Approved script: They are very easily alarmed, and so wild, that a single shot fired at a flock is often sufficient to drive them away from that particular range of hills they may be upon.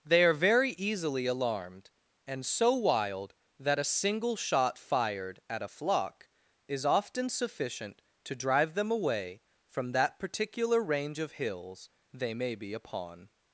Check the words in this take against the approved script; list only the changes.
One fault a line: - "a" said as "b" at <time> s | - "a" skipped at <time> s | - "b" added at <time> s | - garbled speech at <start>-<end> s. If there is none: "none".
none